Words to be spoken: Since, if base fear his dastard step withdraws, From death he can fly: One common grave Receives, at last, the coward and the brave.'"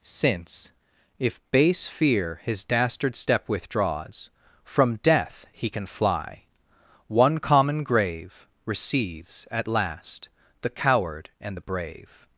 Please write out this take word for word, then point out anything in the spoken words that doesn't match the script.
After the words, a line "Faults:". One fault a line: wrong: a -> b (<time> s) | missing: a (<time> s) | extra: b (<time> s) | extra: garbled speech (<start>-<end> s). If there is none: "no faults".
Since, if base fear his dastard step withdraws, From death he can fly: One common grave Receives, at last, the coward and the brave.'"
Faults:
no faults